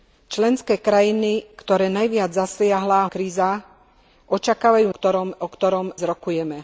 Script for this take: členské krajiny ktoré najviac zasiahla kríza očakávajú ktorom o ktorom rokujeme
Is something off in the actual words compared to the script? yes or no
no